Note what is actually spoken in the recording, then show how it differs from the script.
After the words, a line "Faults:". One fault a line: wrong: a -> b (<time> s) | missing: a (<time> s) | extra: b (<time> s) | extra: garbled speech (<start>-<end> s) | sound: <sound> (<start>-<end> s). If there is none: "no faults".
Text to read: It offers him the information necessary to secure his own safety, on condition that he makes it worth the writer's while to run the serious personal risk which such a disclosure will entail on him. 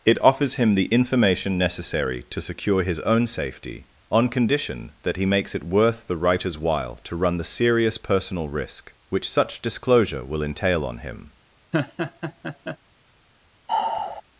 It offers him the information necessary to secure his own safety, on condition that he makes it worth the writer's while to run the serious personal risk which such disclosure will entail on him.
Faults:
missing: a (9.6 s)
sound: laugh (11.7-12.8 s)
sound: sigh (13.7-14.2 s)